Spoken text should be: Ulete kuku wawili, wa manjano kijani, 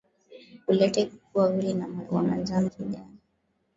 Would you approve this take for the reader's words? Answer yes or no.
yes